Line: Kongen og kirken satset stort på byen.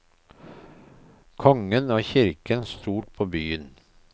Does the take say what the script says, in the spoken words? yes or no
no